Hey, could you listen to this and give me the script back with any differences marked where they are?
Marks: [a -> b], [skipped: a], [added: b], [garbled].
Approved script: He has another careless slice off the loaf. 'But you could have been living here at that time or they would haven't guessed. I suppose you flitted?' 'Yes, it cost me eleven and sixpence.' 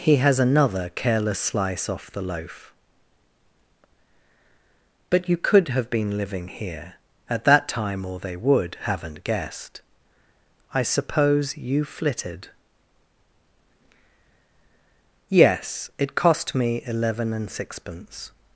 He has another careless slice off the loaf. 'But you could have been living here at that time or they would haven't guessed. I suppose you flitted?' 'Yes, it cost me eleven and sixpence.'